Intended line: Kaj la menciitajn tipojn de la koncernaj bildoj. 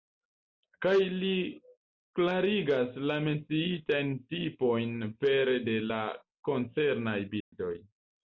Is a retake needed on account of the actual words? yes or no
yes